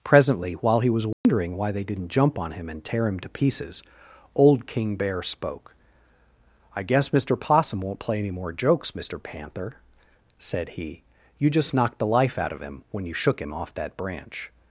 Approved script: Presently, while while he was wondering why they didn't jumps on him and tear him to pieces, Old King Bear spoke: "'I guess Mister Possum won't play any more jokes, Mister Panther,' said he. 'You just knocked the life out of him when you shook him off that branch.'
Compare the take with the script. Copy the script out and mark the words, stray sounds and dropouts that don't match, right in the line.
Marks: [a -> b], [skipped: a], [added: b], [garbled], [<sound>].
Presently, while [skipped: while] he was wondering [dropout] why they didn't [jumps -> jump] on him and tear him to pieces, Old King Bear spoke: "'I guess Mister Possum won't play any more jokes, Mister Panther,' said he. 'You just knocked the life out of him when you shook him off that branch.'